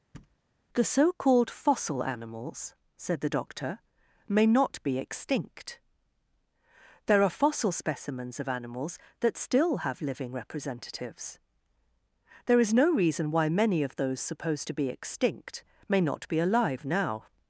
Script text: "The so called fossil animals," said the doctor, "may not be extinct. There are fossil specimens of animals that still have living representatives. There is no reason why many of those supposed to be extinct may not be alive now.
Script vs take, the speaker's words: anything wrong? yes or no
no